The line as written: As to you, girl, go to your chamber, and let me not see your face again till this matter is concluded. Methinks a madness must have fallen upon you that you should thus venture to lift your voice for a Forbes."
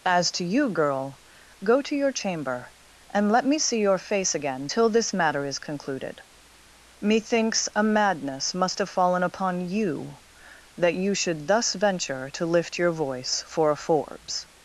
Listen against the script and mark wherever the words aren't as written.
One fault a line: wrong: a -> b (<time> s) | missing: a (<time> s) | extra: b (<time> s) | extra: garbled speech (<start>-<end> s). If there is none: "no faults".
missing: not (3.6 s)